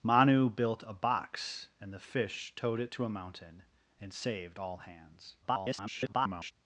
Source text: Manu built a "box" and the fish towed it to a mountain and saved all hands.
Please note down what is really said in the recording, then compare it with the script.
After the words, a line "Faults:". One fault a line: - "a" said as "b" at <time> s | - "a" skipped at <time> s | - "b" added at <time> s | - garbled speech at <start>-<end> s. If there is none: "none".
Manu built a "box" and the fish towed it to a mountain and saved all hands. [garbled]
Faults:
- garbled speech at 5.4-6.5 s